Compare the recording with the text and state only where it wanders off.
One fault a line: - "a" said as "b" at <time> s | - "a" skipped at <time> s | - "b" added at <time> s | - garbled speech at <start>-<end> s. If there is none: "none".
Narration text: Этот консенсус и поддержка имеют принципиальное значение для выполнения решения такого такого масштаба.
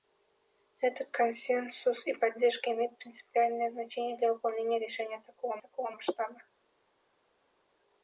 none